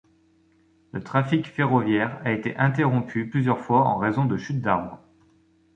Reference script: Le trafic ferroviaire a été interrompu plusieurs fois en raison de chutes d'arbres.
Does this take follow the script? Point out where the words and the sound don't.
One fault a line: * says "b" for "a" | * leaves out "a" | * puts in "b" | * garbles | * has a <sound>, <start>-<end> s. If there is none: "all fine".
all fine